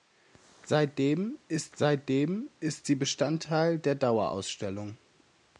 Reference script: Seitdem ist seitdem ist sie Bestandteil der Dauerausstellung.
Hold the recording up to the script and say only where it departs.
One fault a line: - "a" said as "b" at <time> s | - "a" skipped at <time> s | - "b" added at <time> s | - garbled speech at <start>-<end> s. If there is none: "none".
none